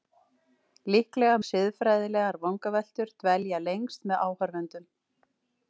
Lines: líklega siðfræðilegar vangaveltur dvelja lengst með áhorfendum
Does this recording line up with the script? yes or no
yes